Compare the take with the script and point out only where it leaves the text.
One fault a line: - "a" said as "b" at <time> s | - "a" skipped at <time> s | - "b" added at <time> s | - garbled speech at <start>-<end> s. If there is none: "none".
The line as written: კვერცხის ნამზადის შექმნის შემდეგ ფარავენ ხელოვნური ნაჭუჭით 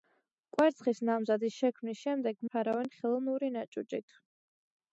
none